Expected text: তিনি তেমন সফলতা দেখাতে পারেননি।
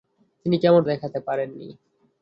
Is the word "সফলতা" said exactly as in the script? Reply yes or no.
no